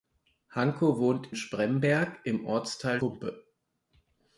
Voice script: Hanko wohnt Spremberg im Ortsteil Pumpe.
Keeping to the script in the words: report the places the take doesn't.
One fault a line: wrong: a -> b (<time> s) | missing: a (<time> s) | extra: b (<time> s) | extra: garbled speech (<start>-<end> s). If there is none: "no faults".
no faults